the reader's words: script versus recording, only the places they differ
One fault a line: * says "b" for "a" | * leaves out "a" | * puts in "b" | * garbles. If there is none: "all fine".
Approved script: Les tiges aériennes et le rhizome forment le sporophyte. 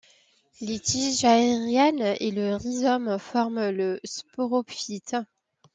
all fine